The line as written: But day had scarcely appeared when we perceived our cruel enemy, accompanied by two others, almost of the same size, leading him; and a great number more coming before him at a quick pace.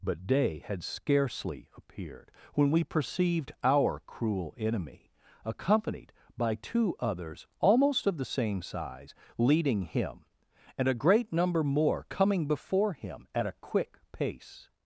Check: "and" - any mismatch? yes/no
no